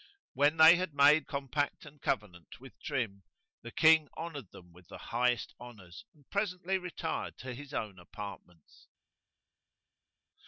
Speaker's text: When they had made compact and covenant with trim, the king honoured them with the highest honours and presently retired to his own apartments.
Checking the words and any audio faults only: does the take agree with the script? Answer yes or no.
yes